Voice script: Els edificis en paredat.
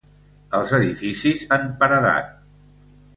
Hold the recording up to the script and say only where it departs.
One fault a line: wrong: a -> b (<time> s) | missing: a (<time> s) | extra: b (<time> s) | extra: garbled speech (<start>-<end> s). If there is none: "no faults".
no faults